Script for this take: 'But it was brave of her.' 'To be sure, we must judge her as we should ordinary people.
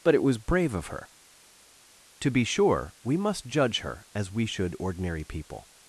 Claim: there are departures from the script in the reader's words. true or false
false